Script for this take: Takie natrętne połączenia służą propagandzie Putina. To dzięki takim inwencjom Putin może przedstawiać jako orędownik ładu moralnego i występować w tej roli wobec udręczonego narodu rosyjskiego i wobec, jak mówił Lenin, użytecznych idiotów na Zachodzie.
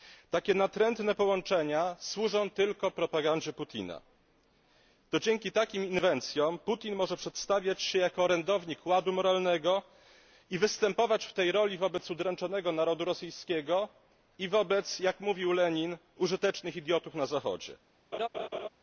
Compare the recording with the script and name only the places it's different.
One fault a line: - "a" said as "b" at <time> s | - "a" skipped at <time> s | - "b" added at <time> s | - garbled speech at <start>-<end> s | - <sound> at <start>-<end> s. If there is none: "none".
- "tylko" added at 2.5 s
- "się" added at 7.8 s
- laugh at 18.1-18.7 s